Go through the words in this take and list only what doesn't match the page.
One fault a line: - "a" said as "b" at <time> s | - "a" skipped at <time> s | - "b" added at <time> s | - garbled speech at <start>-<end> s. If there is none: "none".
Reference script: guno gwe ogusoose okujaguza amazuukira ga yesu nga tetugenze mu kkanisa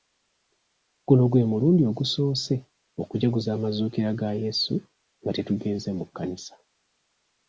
- "mulundi" added at 1.5 s